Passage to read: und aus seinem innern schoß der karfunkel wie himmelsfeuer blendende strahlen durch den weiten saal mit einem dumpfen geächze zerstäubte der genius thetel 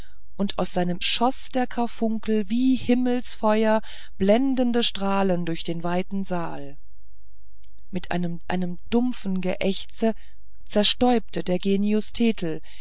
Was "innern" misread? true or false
true